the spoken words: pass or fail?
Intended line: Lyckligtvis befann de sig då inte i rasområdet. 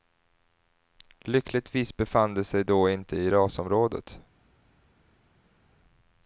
pass